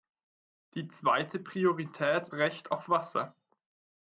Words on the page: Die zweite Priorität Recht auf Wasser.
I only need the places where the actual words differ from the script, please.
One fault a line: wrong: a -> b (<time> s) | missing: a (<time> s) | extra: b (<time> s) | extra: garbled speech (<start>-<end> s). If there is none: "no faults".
no faults